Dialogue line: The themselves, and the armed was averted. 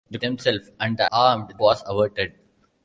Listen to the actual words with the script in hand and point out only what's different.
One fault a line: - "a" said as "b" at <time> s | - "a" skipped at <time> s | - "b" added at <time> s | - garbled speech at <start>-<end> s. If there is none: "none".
none